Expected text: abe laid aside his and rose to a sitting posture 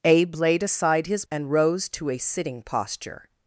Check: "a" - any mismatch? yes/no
no